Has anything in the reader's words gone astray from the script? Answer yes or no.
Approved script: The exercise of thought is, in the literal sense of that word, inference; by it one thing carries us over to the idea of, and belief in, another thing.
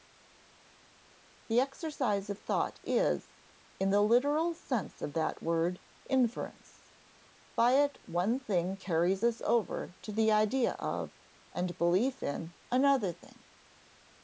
no